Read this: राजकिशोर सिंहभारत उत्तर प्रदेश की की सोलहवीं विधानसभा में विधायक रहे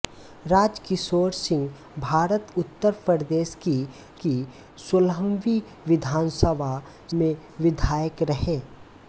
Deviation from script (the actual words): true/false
false